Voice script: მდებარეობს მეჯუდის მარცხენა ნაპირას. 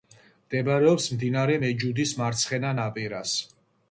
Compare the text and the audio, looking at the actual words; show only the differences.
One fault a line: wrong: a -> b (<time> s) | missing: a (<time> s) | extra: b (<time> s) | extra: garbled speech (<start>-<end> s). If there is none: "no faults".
extra: მდინარე (1.2 s)